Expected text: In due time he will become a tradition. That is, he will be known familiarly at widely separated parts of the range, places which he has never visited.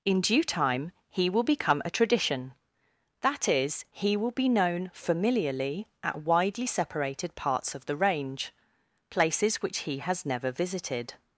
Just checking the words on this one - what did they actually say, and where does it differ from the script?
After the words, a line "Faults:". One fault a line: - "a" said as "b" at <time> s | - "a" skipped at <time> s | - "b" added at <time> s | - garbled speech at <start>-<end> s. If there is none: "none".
In due time he will become a tradition. That is, he will be known familiarly at widely separated parts of the range, places which he has never visited.
Faults:
none